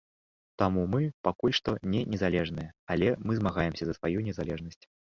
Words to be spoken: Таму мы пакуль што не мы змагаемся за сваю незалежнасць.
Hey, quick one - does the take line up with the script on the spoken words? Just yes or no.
no